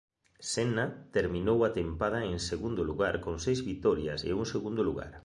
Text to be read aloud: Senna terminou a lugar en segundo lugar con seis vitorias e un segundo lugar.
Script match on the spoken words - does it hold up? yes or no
no